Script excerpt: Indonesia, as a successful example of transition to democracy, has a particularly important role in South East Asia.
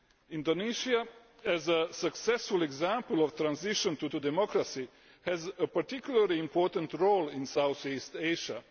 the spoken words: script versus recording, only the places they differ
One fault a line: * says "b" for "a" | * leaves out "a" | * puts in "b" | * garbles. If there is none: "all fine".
* puts in "to"